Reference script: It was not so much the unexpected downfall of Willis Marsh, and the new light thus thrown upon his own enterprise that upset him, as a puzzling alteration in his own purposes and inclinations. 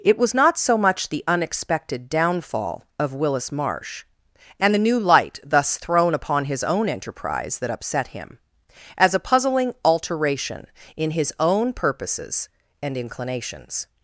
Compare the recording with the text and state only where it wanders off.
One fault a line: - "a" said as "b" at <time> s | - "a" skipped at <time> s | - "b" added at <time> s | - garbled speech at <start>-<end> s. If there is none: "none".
none